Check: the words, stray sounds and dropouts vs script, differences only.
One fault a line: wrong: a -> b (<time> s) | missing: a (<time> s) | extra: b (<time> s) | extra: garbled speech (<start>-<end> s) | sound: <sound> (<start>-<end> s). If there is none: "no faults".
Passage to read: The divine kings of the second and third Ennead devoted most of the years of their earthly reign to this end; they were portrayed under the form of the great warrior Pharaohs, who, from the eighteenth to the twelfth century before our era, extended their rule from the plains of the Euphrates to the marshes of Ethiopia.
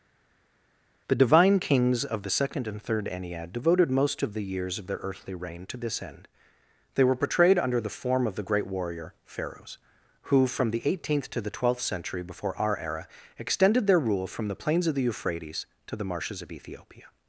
no faults